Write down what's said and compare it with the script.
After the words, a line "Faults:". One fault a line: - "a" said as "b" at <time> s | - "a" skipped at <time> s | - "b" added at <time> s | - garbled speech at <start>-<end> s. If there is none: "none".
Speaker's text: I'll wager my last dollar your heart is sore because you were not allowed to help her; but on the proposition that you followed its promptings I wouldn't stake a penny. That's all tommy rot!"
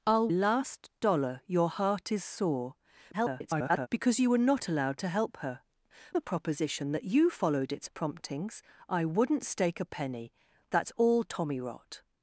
I'll last dollar your heart is sore [garbled] because you were not allowed to help her; the proposition that you followed its promptings I wouldn't stake a penny. That's all tommy rot!"
Faults:
- "wager my" skipped at 0.3 s
- garbled speech at 3.1-3.9 s
- "but on" skipped at 5.6 s